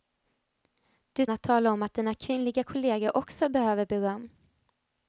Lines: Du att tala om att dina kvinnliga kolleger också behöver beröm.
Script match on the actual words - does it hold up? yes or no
yes